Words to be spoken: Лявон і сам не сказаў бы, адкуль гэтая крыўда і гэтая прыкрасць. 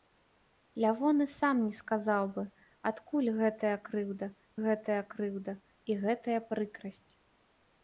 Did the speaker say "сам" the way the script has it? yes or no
yes